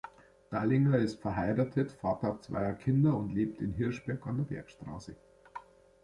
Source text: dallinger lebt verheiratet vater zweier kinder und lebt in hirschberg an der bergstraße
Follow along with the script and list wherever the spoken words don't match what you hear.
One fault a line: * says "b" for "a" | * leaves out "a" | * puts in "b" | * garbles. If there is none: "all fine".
* says "ist" for "lebt"